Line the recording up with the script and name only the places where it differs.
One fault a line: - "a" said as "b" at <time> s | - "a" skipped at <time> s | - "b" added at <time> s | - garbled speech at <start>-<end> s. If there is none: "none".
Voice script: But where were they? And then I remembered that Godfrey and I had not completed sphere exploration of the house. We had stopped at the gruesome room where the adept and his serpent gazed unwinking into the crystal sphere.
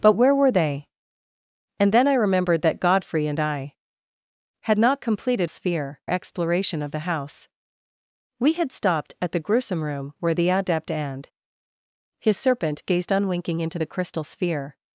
none